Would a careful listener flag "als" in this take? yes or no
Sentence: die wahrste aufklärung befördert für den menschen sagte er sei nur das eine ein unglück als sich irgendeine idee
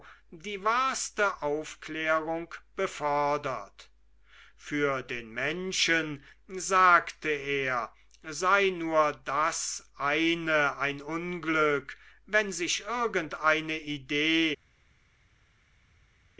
yes